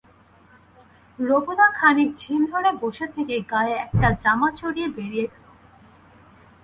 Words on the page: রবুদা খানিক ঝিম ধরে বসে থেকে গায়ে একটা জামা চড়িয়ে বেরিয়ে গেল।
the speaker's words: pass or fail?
pass